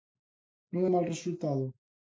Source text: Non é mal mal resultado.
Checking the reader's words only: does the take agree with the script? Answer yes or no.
no